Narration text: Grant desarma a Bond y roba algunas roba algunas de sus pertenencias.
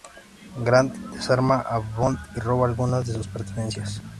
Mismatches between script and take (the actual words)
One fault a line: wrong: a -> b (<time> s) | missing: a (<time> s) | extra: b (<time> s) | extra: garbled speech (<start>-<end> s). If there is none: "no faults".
missing: roba algunas (3.0 s)